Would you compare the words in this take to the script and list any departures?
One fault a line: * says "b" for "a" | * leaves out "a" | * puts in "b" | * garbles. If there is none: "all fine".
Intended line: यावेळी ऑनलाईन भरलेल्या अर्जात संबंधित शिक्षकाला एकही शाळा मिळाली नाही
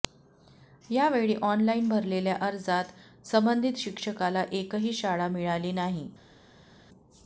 all fine